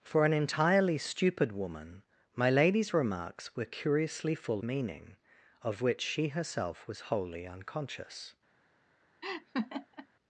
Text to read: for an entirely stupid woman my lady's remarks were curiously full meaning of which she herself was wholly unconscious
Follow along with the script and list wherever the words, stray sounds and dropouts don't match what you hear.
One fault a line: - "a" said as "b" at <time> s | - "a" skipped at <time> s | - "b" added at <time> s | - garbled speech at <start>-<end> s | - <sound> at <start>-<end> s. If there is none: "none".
- laugh at 9.2-10.1 s